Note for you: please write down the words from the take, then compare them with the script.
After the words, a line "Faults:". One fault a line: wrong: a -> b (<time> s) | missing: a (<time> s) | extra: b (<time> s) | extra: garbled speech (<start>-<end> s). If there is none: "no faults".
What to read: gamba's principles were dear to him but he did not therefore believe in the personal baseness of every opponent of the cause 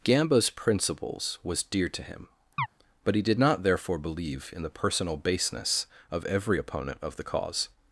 gamba's principles was dear to him but he did not therefore believe in the personal baseness of every opponent of the cause
Faults:
wrong: were -> was (1.4 s)